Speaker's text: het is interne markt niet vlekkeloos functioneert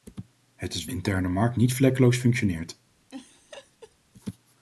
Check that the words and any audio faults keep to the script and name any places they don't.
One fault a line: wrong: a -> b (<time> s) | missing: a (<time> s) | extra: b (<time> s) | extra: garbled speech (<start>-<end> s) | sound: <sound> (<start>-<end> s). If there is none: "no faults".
sound: laugh (3.1-4.0 s)